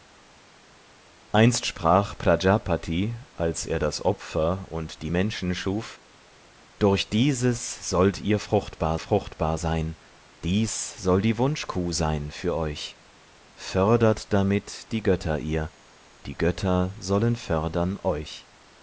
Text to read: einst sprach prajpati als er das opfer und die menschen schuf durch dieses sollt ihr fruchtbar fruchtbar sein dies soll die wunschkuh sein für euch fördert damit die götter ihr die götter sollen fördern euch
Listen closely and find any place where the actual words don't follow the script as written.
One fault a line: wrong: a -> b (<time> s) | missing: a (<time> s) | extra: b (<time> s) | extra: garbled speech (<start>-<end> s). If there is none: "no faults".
no faults